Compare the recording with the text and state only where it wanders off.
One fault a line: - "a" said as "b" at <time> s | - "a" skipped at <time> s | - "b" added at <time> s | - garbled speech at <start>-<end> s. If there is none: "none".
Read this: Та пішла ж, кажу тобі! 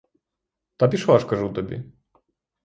none